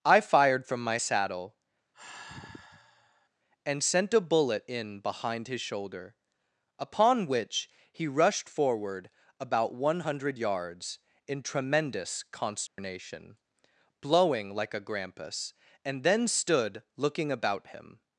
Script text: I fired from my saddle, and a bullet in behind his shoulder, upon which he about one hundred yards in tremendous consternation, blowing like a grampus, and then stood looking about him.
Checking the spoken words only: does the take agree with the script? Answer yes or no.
no